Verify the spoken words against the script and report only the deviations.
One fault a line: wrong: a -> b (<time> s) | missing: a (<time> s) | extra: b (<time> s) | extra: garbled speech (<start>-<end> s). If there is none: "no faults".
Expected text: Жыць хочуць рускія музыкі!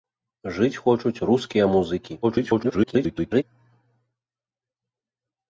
extra: garbled speech (2.2-3.4 s)